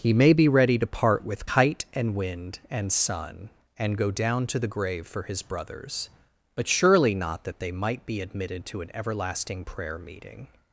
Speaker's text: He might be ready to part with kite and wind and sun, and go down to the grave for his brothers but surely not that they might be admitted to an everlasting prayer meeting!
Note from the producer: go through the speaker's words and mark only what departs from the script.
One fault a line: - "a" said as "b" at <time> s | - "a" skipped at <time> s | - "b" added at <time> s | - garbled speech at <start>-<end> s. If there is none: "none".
- "might" said as "may" at 0.1 s